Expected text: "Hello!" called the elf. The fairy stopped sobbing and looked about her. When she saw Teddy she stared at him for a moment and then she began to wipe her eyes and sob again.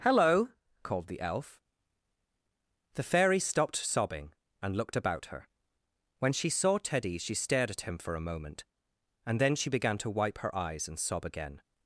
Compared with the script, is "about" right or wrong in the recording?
right